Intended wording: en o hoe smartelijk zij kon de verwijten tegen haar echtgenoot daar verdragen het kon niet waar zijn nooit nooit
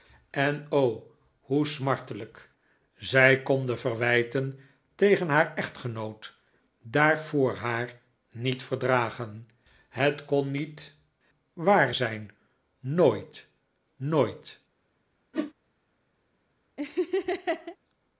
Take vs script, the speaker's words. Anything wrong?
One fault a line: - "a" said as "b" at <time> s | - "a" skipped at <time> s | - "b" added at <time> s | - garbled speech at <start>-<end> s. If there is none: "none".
- "voor haar niet" added at 7.2 s